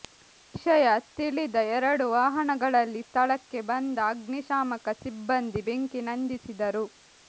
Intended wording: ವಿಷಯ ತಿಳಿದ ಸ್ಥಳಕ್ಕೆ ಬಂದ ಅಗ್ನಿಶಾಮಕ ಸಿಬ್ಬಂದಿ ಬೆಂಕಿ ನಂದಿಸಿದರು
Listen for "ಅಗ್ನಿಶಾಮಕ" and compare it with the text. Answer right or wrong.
right